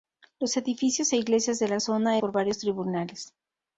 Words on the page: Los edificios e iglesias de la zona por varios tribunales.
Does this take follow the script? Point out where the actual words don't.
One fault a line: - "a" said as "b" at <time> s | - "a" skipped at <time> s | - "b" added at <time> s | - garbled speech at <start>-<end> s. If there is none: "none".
none